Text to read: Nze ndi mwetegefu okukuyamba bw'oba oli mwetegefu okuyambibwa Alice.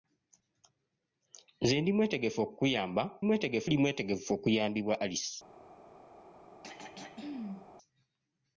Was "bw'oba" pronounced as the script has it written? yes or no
no